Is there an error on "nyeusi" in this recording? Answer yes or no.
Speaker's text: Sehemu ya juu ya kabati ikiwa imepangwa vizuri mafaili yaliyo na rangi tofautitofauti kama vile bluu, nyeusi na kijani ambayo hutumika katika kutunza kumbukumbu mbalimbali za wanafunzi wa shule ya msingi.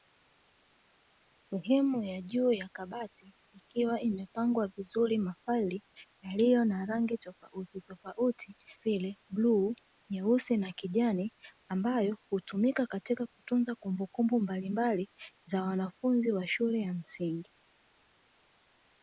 no